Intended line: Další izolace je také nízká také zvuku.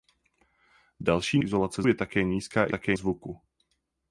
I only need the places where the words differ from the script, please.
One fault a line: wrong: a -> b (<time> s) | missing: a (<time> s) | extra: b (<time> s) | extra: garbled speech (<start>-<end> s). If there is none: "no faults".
no faults